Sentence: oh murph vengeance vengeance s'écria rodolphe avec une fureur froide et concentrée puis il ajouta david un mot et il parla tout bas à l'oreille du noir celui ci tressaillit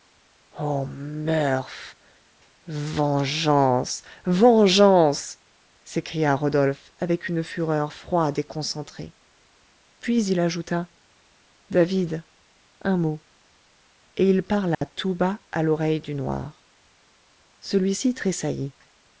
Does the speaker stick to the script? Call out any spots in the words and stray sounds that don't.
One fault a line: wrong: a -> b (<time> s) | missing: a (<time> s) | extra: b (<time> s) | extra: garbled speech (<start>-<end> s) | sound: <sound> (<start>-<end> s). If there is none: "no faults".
sound: dropout (14.7-14.8 s)